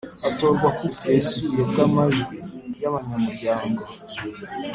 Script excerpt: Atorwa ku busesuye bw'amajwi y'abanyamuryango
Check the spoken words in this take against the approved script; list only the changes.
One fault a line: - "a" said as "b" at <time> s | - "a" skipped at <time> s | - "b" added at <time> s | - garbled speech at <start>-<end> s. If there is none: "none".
none